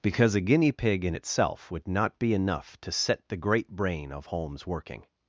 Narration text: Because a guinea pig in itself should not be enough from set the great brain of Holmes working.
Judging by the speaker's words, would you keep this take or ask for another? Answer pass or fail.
fail